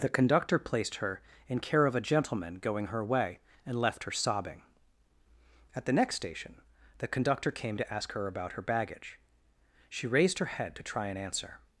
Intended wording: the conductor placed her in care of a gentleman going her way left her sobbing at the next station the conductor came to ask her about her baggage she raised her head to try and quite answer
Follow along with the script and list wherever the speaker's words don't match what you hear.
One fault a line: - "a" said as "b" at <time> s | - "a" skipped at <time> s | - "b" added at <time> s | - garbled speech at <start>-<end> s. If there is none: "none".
- "and" added at 3.7 s
- "quite" skipped at 11.2 s